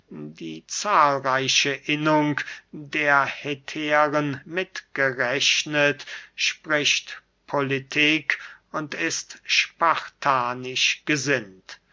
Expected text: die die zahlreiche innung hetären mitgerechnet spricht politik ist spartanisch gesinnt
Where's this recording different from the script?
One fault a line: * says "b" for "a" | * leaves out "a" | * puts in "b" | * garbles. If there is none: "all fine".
* leaves out "die"
* puts in "der"
* puts in "und"